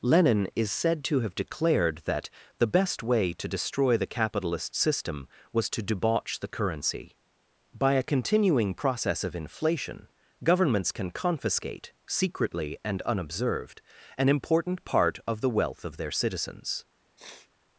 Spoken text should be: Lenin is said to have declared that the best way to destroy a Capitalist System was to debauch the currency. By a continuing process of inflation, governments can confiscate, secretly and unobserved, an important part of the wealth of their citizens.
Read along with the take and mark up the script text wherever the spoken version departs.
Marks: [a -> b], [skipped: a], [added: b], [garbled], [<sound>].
Lenin is said to have declared that the best way to destroy [a -> the] Capitalist System was to debauch the currency. By a continuing process of inflation, governments can confiscate, secretly and unobserved, an important part of the wealth of their citizens. [sniff]